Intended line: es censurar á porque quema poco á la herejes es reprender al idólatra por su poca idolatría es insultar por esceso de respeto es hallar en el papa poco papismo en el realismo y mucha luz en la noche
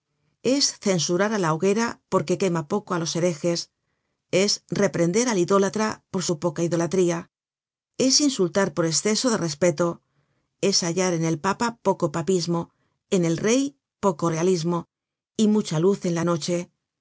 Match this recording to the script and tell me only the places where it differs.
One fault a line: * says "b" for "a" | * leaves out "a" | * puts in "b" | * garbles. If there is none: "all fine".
* puts in "la hoguera"
* says "los" for "la"
* puts in "rey poco"